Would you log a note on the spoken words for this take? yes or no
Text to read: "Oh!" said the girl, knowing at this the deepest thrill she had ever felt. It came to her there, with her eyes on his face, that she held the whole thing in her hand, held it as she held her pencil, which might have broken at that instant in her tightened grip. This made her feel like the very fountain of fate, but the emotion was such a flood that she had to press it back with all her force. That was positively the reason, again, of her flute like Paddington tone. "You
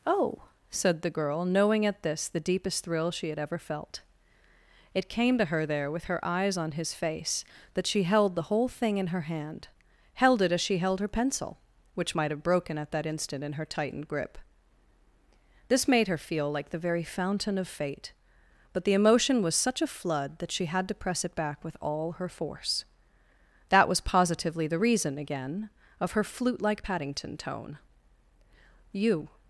no